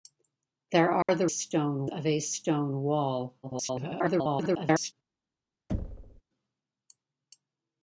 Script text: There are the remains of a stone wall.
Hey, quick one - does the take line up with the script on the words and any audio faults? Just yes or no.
no